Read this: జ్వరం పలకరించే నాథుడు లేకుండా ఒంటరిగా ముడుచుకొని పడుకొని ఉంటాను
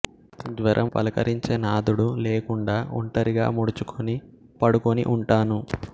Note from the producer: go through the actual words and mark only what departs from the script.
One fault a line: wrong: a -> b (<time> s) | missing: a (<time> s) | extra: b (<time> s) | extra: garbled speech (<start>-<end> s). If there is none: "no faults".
no faults